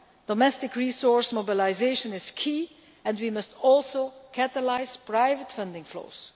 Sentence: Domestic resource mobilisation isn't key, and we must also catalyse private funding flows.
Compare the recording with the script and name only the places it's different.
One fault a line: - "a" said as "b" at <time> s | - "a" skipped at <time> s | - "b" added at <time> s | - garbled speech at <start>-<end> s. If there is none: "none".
- "isn't" said as "is" at 2.1 s